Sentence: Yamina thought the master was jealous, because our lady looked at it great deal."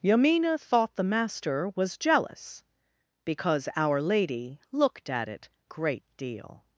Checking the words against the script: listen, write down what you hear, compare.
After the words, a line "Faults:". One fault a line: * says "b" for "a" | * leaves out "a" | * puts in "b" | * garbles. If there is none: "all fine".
Yamina thought the master was jealous, because our lady looked at it great deal."
Faults:
all fine